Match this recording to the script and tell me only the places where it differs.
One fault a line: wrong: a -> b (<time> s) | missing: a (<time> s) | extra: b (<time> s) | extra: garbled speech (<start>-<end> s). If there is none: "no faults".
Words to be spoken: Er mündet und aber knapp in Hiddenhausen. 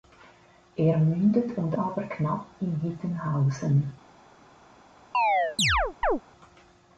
no faults